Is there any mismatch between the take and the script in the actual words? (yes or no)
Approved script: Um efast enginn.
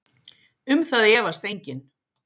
yes